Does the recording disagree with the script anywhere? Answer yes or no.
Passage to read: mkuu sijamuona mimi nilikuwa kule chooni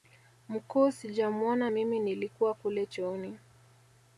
no